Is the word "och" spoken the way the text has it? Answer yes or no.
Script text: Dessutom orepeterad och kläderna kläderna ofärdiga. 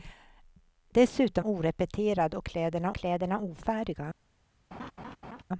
yes